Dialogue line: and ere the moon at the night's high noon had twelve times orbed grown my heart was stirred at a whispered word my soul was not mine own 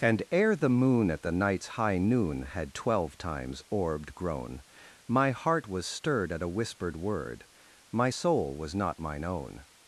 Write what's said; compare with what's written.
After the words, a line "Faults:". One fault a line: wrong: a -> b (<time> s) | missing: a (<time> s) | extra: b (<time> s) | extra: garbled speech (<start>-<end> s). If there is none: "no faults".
and ere the moon at the night's high noon had twelve times orbed grown my heart was stirred at a whispered word my soul was not mine own
Faults:
no faults